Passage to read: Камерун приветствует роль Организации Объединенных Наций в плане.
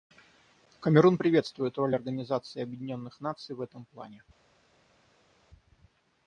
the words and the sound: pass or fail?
fail